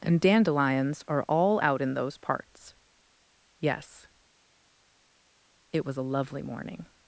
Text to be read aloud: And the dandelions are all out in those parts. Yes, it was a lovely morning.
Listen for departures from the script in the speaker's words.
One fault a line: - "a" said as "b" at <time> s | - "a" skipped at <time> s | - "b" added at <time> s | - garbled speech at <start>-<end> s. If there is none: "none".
- "the" skipped at 0.2 s